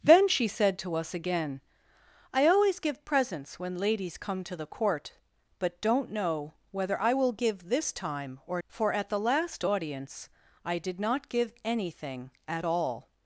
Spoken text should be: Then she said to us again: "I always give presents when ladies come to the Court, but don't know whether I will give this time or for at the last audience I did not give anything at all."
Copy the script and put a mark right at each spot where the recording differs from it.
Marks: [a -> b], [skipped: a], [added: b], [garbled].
Then she said to us again: "I always give presents when ladies come to the Court, but don't know whether I will give this time or for at the last audience I did not give anything at all."